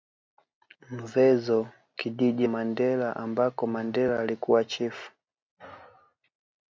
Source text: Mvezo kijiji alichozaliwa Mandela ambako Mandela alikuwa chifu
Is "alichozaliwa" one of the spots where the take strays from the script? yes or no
yes